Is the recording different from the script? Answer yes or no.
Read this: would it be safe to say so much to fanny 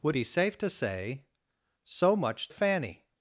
yes